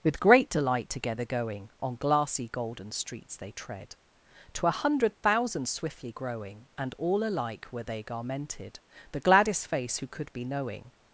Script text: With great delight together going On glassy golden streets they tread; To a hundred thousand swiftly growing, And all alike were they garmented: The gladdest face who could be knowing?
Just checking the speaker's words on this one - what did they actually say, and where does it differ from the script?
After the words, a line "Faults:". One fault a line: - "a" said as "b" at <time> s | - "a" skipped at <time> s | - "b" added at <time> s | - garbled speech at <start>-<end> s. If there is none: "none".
With great delight together going On glassy golden streets they tread; To a hundred thousand swiftly growing, And all alike were they garmented: The gladdest face who could be knowing?
Faults:
none